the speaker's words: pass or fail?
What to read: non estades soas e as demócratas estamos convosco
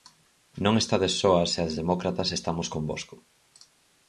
pass